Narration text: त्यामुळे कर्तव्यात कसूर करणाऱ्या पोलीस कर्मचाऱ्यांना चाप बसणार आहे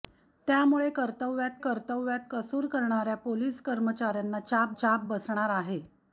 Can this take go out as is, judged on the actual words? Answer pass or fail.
fail